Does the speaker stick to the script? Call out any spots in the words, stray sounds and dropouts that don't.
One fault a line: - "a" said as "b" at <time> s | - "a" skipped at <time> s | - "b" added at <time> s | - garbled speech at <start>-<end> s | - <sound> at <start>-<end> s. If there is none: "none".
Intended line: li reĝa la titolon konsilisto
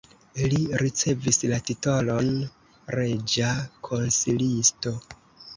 - "reĝa" said as "ricevis" at 0.8 s
- "reĝa" added at 3.0 s